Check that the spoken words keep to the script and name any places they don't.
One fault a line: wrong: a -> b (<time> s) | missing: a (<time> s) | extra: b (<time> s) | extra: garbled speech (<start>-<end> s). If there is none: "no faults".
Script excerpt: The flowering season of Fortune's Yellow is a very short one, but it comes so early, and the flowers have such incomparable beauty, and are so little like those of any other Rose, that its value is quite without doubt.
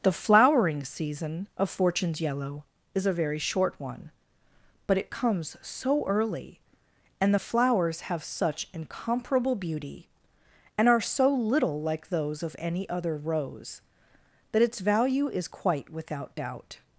no faults